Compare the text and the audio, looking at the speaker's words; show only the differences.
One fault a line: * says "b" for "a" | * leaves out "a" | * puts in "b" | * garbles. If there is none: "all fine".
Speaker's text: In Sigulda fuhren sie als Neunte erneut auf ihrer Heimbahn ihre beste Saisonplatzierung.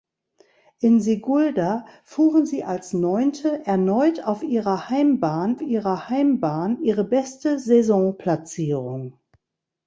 * puts in "ihrer Heimbahn"